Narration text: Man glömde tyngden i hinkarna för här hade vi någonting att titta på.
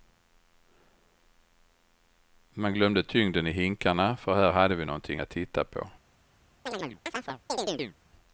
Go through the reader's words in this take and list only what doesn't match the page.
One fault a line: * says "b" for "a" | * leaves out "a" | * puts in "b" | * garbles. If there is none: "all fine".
all fine